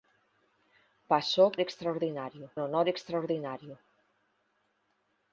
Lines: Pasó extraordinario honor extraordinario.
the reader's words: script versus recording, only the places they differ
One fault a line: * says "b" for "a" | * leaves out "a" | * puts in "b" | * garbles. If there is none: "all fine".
all fine